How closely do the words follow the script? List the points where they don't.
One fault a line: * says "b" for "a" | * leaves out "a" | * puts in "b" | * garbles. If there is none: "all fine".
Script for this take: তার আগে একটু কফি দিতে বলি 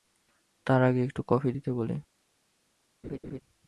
all fine